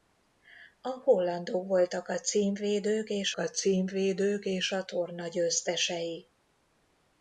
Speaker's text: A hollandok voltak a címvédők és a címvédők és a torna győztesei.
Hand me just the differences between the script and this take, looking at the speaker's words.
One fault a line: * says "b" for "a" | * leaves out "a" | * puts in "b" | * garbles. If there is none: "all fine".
all fine